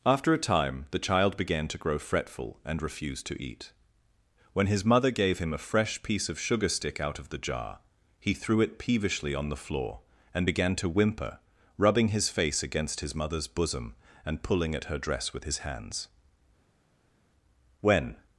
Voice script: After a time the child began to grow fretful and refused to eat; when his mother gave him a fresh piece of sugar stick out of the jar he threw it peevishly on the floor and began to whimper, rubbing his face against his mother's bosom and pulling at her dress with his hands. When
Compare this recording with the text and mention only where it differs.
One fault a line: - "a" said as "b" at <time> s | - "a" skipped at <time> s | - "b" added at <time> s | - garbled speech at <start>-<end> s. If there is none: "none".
none